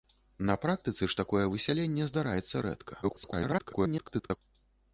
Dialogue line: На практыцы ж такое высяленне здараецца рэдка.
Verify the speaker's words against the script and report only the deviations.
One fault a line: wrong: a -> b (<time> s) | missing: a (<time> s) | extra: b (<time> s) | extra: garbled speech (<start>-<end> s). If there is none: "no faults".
extra: garbled speech (3.0-4.4 s)